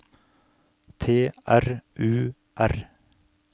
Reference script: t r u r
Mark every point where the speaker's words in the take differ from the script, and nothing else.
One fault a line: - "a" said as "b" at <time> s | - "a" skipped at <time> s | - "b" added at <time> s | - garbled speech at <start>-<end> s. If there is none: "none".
none